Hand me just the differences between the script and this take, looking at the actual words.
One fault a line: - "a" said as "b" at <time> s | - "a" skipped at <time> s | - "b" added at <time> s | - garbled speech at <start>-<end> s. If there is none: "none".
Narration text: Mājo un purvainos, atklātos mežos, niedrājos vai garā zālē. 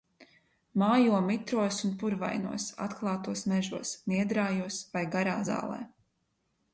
- "mitros" added at 1.2 s